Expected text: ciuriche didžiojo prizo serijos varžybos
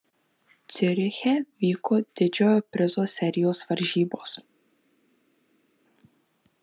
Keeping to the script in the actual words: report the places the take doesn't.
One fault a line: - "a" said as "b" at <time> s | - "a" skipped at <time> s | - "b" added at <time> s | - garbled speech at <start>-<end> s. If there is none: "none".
- "vyko" added at 1.6 s